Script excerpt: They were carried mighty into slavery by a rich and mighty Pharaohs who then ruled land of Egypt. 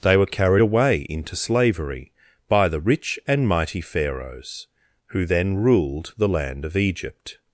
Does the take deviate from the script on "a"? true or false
true